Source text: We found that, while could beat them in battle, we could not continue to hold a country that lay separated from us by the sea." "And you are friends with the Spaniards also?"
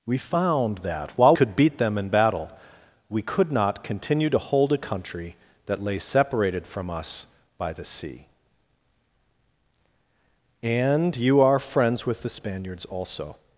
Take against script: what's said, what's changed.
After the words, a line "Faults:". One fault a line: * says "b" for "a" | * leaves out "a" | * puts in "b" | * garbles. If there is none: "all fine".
We found that, while could beat them in battle, we could not continue to hold a country that lay separated from us by the sea." "And you are friends with the Spaniards also?"
Faults:
all fine